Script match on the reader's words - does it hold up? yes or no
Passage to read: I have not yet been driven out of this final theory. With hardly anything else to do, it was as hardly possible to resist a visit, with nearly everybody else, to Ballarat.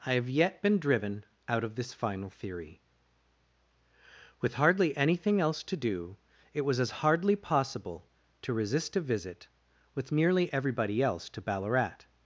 no